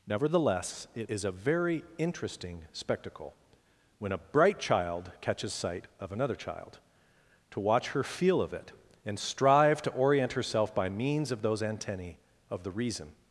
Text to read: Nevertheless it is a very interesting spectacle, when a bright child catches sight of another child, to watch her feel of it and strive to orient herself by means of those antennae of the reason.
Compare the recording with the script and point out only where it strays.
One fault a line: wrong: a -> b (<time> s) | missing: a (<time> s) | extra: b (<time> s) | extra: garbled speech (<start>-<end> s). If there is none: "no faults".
no faults